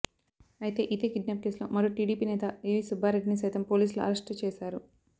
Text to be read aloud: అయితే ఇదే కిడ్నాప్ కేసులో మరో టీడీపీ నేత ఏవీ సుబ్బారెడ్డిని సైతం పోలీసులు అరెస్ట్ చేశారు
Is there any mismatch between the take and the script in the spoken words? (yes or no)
no